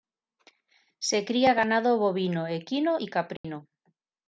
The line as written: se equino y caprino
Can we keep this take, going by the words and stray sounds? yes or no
no